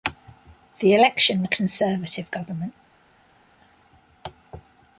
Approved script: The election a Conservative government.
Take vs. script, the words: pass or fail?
pass